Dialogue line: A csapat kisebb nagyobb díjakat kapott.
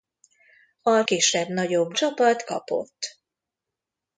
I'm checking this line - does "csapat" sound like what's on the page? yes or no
no